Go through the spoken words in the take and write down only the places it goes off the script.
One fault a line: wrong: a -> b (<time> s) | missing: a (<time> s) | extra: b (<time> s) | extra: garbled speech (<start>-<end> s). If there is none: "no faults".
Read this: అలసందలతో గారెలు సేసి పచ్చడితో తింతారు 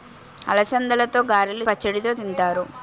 missing: సేసి (1.6 s)